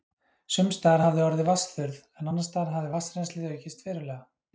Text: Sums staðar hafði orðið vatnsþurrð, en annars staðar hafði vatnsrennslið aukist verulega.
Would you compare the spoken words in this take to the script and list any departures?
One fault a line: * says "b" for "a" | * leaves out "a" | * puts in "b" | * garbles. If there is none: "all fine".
all fine